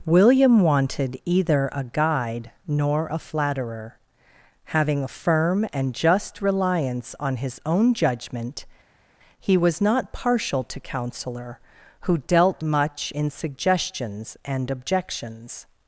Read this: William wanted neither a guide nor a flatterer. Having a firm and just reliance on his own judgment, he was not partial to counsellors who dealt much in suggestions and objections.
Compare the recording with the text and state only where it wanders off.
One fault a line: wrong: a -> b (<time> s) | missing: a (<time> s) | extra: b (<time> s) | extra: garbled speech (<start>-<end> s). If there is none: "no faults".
wrong: neither -> either (1.2 s)
wrong: counsellors -> counsellor (10.8 s)